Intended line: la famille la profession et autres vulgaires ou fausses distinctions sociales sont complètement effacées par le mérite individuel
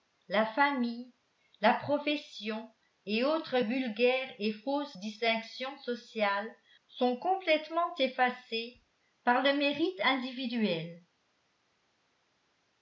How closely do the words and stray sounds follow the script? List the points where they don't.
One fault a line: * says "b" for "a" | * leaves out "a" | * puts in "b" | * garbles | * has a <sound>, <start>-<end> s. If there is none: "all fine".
* says "et" for "ou"